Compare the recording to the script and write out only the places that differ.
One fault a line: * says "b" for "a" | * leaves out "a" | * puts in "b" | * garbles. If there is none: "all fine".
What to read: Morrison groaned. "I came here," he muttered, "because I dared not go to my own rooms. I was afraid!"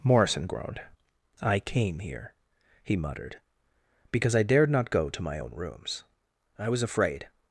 all fine